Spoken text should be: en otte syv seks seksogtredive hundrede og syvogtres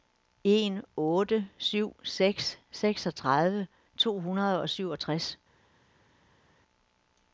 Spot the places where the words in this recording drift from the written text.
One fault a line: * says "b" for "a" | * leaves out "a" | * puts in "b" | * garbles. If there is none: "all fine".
* puts in "to"